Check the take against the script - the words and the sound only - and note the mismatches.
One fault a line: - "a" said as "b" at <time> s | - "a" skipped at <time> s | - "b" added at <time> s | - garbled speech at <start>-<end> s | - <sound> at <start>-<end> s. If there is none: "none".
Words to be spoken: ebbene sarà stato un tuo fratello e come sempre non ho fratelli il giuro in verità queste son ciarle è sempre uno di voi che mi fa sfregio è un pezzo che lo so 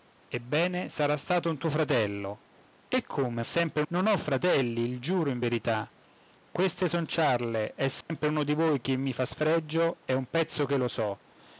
- dropout at 8.0-8.1 s